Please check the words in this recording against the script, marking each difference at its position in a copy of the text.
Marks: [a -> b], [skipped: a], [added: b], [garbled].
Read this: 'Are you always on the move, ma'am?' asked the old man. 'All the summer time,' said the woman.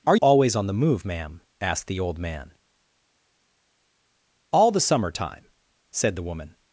'Are [skipped: you] always on the move, ma'am?' asked the old man. 'All the summer time,' said the woman.